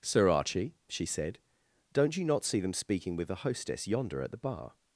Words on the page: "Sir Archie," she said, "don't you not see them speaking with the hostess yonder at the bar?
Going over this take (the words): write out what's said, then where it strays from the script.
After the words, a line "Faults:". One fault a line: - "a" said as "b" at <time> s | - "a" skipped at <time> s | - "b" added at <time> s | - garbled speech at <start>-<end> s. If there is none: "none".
"Sir Archie," she said, "don't you not see them speaking with the hostess yonder at the bar?
Faults:
none